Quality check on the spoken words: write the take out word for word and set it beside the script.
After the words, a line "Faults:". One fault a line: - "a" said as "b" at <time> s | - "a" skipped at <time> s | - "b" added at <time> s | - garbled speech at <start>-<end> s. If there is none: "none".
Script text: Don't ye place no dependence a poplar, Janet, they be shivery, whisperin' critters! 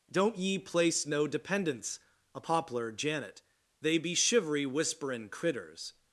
Don't ye place no dependence a poplar, Janet, they be shivery, whisperin' critters!
Faults:
none